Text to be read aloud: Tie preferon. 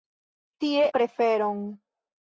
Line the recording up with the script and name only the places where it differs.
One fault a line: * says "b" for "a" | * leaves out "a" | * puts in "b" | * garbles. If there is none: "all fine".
all fine